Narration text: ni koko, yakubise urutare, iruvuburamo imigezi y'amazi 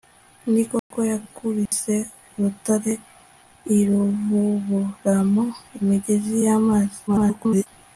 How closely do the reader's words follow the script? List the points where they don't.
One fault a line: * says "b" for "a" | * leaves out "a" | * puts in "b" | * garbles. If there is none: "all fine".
* garbles